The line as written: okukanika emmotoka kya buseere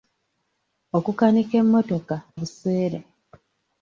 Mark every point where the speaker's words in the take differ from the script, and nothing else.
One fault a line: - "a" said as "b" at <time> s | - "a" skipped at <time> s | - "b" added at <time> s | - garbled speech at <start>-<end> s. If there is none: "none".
- "kya" skipped at 2.1 s